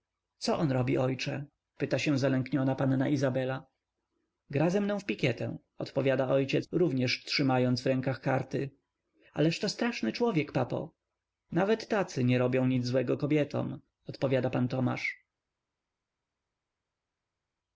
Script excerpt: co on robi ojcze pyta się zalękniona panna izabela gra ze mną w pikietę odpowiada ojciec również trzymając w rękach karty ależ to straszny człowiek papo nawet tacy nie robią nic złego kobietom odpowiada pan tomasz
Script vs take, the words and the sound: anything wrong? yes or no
no